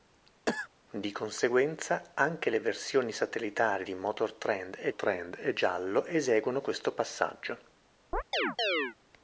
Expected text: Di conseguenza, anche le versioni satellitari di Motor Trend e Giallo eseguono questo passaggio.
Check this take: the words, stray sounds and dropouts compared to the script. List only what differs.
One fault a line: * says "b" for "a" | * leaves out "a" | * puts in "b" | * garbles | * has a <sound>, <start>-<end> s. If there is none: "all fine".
* has a cough, 0.5-0.7 s
* puts in "Trend e"
* has a chirp, 8.1-9.0 s